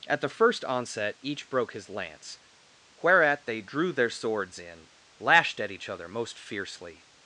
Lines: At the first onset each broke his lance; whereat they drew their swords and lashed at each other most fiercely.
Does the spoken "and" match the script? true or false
false